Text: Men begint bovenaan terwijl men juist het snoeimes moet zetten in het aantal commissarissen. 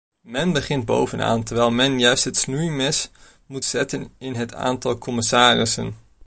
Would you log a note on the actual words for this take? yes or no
no